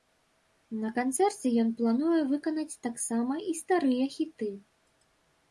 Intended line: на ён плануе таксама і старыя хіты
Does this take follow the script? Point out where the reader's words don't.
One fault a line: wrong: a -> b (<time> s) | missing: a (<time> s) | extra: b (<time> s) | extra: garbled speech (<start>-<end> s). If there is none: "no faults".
extra: канцэрце (0.9 s)
extra: выканаць (2.3 s)